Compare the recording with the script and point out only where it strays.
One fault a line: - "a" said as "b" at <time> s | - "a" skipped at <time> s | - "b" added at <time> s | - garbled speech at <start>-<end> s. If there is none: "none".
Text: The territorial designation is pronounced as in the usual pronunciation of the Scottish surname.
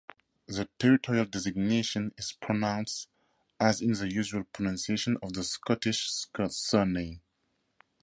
none